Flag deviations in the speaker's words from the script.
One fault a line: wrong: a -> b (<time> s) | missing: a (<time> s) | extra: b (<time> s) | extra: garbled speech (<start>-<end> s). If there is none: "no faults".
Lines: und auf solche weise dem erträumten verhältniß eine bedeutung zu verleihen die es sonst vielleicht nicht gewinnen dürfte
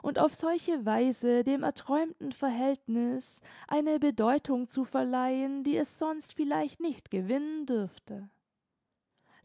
no faults